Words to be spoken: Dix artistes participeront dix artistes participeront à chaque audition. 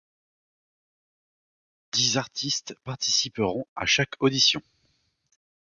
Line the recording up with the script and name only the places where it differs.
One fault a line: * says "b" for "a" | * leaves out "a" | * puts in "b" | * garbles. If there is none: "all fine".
* leaves out "dix artistes participeront"